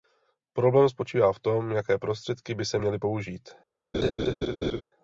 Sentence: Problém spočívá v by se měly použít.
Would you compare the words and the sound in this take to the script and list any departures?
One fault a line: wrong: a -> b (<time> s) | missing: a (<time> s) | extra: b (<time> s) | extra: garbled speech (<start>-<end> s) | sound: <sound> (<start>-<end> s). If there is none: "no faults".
extra: tom jaké prostředky (1.4 s)
sound: laugh (3.9-4.8 s)